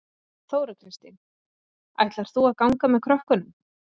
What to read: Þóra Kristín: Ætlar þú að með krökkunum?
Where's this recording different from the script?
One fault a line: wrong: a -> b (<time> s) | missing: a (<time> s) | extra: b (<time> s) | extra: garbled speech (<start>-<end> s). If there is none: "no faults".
extra: ganga (2.6 s)